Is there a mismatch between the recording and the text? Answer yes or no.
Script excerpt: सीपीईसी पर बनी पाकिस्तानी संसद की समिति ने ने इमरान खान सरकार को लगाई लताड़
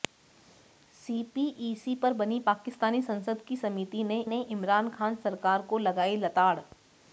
no